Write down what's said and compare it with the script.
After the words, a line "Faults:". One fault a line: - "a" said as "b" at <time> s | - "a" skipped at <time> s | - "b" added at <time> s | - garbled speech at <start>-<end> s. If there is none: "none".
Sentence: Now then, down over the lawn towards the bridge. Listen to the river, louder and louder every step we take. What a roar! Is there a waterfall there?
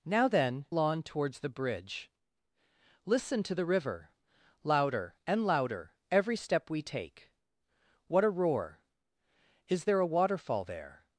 Now then, lawn towards the bridge. Listen to the river, louder and louder every step we take. What a roar! Is there a waterfall there?
Faults:
- "down over the" skipped at 0.7 s